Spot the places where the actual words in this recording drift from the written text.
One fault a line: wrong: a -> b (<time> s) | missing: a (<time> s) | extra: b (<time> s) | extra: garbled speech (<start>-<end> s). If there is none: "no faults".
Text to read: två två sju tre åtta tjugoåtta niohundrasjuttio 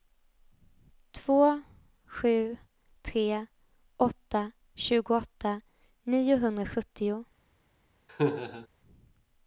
missing: två (1.6 s)